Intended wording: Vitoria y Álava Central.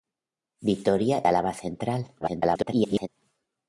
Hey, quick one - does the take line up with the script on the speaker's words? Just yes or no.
no